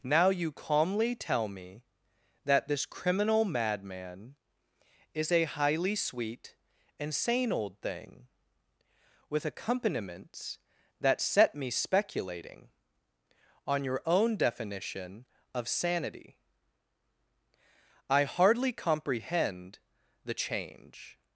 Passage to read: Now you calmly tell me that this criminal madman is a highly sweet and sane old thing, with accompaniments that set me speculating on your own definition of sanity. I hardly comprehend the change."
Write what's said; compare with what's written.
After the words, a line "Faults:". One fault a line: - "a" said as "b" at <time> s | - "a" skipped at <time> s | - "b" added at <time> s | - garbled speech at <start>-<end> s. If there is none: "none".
Now you calmly tell me that this criminal madman is a highly sweet and sane old thing, with accompaniments that set me speculating on your own definition of sanity. I hardly comprehend the change."
Faults:
none